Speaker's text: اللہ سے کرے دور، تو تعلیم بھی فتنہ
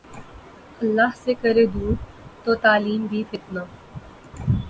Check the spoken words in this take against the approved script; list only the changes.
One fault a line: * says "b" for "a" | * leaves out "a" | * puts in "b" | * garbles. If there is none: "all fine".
all fine